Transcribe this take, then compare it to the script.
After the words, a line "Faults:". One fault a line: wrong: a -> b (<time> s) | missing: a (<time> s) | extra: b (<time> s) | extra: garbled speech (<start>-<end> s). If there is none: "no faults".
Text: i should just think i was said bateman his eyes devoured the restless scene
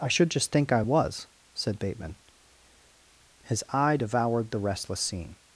i should just think i was said bateman his eye devoured the restless scene
Faults:
wrong: eyes -> eye (3.7 s)